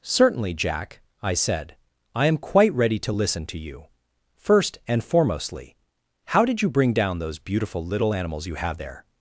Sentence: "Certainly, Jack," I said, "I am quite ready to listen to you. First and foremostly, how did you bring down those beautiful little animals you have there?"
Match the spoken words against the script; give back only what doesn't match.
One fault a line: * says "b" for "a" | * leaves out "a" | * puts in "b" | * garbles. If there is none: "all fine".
all fine